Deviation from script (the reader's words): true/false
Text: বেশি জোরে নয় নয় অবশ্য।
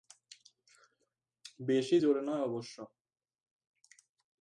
true